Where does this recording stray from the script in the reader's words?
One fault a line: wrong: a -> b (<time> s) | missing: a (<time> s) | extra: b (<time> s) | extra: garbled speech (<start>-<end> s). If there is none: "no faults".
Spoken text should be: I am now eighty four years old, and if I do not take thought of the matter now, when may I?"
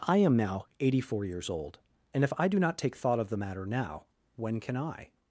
wrong: may -> can (4.6 s)